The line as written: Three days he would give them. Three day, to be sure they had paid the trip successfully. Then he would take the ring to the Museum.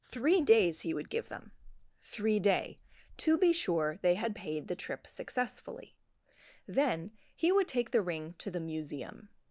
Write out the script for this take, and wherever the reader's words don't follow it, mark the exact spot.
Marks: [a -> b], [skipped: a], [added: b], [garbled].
Three days he would give them. Three day, to be sure they had paid the trip successfully. Then he would take the ring to the Museum.